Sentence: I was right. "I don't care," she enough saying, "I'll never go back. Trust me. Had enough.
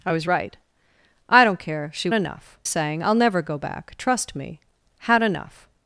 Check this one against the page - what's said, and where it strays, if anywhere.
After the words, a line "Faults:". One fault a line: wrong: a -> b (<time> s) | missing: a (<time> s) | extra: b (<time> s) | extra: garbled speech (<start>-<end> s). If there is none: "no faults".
I was right. "I don't care," she enough saying, "I'll never go back. Trust me. Had enough.
Faults:
no faults